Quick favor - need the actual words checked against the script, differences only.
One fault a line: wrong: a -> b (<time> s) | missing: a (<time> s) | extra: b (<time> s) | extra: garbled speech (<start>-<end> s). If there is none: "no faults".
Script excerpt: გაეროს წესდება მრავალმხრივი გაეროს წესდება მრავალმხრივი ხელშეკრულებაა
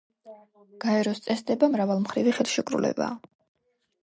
missing: გაეროს წესდება მრავალმხრივი (2.4 s)